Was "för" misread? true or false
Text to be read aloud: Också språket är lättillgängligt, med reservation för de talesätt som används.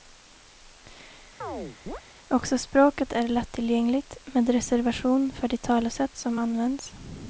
false